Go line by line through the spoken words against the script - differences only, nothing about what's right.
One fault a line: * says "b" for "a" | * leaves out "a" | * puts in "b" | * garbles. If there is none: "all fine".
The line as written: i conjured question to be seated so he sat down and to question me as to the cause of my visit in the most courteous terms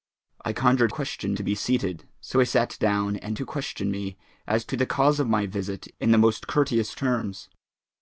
all fine